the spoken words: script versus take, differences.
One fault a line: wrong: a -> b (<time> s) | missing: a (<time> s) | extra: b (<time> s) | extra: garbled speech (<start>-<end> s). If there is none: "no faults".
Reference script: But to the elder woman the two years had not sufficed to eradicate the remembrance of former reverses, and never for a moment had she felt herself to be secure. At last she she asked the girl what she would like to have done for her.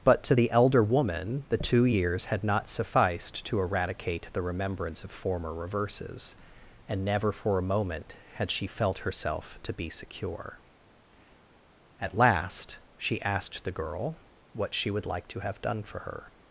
missing: she (13.2 s)